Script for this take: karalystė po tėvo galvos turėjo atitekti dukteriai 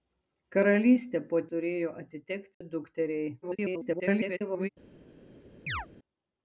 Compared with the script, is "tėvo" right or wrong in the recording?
wrong